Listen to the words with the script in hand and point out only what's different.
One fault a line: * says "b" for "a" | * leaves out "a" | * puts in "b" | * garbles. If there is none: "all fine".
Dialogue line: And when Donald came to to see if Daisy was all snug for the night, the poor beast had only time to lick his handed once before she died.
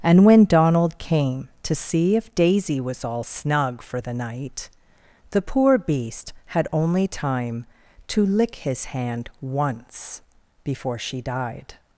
* leaves out "to"
* says "hand" for "handed"